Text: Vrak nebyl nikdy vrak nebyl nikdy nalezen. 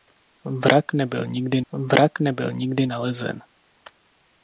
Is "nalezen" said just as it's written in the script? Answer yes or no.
yes